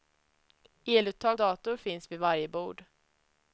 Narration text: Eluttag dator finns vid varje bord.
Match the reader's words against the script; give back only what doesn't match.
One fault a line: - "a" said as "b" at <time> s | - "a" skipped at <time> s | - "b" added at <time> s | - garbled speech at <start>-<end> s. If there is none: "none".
none